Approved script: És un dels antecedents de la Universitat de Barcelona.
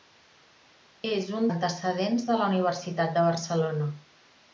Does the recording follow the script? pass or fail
fail